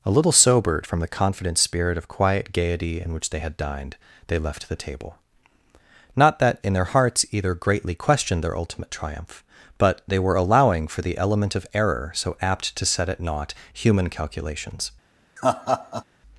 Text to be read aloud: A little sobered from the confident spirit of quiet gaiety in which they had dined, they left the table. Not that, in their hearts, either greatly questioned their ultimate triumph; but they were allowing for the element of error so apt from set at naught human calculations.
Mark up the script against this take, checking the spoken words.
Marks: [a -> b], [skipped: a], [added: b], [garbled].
A little sobered from the confident spirit of quiet gaiety in which they had dined, they left the table. Not that, in their hearts, either greatly questioned their ultimate triumph; but they were allowing for the element of error so apt [from -> to] set at naught human calculations.